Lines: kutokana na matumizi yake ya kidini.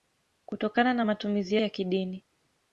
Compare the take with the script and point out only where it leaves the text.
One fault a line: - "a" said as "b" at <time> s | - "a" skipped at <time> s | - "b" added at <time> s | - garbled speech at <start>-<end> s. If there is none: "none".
- "yake" skipped at 1.6 s